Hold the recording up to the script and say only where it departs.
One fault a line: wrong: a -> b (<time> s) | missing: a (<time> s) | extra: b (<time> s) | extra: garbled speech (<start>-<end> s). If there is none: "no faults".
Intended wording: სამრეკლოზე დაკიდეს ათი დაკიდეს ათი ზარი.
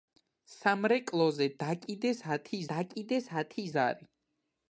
no faults